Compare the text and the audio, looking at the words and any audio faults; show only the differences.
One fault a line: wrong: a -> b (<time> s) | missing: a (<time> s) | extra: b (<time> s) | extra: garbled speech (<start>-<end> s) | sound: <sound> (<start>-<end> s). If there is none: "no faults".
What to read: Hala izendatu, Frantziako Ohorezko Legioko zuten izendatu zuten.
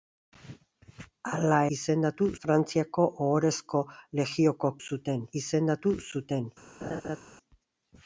sound: laugh (6.8-7.2 s)